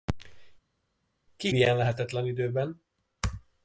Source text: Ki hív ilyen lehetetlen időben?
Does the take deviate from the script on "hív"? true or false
true